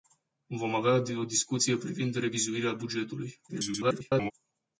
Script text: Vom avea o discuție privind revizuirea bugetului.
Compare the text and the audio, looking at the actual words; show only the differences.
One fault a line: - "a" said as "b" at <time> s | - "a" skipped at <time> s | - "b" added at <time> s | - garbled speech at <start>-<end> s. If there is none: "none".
- garbled speech at 3.5-4.3 s